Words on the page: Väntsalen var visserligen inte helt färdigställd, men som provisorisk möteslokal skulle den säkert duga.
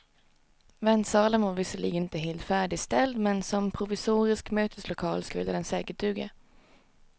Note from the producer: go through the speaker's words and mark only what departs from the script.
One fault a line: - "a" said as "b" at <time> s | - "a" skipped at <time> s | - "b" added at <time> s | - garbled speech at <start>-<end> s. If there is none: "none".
none